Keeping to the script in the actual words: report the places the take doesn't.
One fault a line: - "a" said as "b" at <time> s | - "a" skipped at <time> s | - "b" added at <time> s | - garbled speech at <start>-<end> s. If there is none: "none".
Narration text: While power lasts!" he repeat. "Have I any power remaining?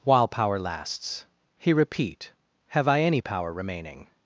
none